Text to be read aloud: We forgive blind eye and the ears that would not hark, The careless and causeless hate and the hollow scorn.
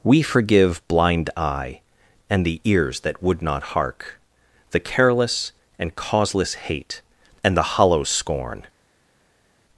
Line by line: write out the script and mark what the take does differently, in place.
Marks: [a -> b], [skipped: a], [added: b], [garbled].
We forgive blind eye and the ears that would not hark, The careless and causeless hate and the hollow scorn.